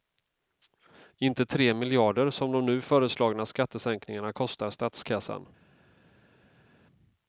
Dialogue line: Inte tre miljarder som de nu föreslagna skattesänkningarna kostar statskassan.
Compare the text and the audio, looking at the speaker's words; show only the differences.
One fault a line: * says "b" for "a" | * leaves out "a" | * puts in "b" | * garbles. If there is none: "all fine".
all fine